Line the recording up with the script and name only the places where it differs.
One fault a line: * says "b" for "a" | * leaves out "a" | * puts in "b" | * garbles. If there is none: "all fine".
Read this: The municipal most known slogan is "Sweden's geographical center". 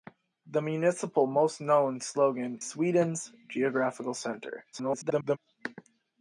* leaves out "is"
* garbles